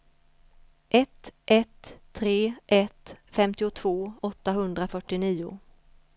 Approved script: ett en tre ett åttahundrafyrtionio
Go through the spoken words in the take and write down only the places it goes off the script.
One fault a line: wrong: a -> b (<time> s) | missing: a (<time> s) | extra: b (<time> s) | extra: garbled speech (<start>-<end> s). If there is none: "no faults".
wrong: en -> ett (1.4 s)
extra: femtiotvå (3.3 s)